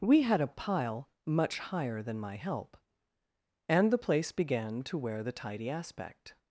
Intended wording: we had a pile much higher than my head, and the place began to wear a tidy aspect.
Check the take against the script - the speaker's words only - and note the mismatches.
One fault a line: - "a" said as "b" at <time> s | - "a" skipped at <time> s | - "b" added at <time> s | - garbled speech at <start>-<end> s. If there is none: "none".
- "head" said as "help" at 2.4 s
- "a" said as "the" at 5.2 s